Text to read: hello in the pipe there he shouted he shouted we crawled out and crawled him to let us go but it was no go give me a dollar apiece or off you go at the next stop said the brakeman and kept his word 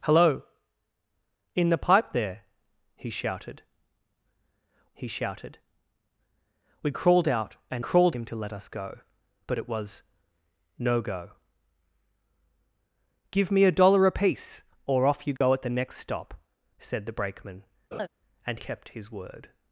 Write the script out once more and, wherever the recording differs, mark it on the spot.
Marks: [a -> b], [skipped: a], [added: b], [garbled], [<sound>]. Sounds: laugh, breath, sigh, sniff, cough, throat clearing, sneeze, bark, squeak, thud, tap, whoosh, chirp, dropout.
hello in the pipe there he shouted he shouted we crawled out and crawled him to let us go but it was no go give me a dollar apiece or off you go [dropout] at the next stop said the brakeman [laugh] and kept his word